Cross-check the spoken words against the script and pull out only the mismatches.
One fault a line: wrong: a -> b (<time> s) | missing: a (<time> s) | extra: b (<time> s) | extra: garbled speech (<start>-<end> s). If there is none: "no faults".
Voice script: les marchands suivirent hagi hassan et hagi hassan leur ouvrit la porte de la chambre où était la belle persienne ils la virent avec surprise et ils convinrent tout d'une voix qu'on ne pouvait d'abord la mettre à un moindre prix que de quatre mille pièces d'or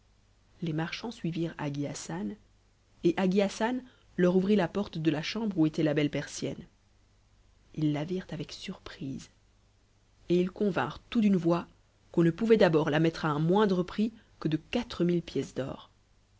no faults